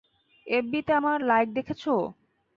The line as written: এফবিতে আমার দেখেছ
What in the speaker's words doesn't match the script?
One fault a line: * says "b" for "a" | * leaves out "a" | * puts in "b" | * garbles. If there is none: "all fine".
* puts in "লাইক"